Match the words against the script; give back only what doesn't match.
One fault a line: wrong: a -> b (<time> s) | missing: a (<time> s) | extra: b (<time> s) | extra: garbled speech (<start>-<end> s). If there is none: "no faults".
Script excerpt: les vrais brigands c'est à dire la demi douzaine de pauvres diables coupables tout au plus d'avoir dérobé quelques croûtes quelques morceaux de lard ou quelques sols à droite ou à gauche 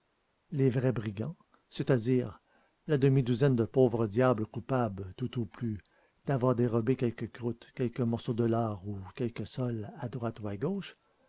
no faults